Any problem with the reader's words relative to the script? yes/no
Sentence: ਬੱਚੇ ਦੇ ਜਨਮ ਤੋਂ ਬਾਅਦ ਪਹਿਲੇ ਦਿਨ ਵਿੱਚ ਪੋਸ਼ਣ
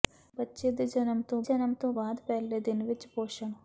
yes